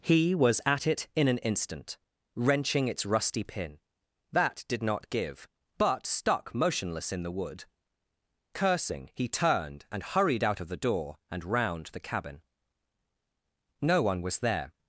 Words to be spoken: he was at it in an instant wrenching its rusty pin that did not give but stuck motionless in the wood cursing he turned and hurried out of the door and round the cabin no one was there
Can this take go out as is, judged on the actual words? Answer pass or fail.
pass